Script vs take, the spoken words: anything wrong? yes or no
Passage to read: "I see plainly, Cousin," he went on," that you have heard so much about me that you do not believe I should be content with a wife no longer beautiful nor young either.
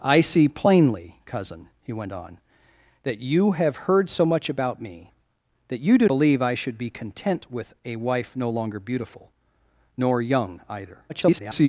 yes